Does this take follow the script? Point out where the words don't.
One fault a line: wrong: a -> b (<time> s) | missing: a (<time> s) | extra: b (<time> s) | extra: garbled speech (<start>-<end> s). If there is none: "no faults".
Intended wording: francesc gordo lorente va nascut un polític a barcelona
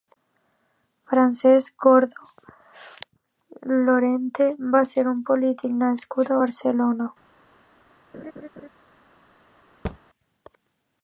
wrong: nascut -> ser (4.9 s)
extra: nascut (5.8 s)